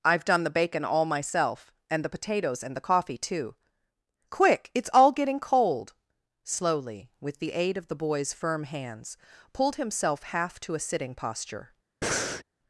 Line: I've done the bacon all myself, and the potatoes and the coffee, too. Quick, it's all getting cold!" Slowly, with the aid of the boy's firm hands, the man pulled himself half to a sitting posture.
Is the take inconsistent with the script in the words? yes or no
yes